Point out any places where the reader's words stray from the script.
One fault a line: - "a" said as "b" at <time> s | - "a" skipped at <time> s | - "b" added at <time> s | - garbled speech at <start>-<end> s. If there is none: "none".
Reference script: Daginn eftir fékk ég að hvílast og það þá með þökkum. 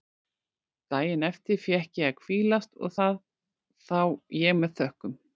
- "ég" added at 4.4 s